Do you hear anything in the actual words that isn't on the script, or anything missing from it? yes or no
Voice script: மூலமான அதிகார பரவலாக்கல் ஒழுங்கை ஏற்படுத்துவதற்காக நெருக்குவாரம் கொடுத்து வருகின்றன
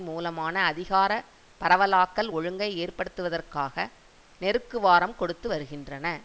no